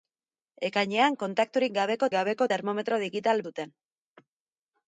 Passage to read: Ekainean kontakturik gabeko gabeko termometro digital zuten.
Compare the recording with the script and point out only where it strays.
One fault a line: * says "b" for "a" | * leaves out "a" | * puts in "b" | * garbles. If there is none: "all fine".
all fine